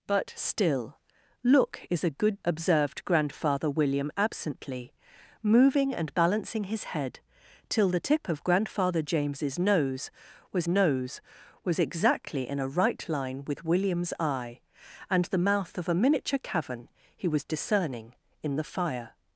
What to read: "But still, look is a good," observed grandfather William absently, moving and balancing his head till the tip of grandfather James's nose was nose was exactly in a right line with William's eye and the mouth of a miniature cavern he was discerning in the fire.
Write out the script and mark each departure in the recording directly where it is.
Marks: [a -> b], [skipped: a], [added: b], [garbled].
"But still, look is a good," observed grandfather William absently, moving and balancing his head till the tip of grandfather James's nose was nose was exactly in a right line with William's eye and the mouth of a miniature cavern he was discerning in the fire.